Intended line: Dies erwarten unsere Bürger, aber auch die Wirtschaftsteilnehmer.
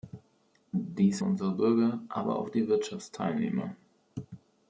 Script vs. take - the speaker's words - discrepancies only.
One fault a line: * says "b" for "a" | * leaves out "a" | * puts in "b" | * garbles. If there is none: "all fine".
* leaves out "erwarten"